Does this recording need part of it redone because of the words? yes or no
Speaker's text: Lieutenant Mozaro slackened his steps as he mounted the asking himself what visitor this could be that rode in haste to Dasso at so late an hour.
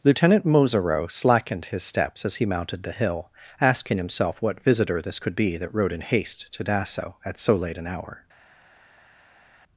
yes